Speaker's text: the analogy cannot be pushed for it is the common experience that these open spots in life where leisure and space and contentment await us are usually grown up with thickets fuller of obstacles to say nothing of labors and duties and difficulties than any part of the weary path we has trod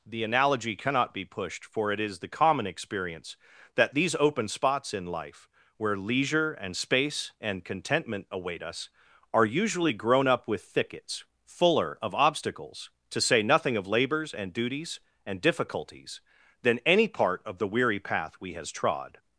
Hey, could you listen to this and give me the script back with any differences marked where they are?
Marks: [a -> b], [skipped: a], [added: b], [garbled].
the analogy cannot be pushed for it is the common experience that these open spots in life where leisure and space and contentment await us are usually grown up with thickets fuller of obstacles to say nothing of labors and duties and difficulties than any part of the weary path we has trod